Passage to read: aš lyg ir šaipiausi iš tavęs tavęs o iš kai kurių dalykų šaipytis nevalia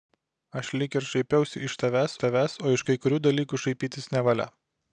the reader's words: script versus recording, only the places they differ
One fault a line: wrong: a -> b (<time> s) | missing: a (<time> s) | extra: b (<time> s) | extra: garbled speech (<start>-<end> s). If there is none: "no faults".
no faults